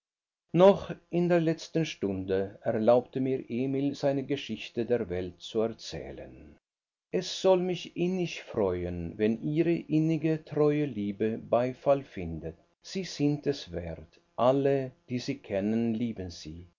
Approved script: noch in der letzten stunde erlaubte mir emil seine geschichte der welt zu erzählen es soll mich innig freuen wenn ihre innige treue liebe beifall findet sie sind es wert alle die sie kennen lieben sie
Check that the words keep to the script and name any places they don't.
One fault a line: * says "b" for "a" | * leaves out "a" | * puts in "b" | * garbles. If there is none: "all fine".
all fine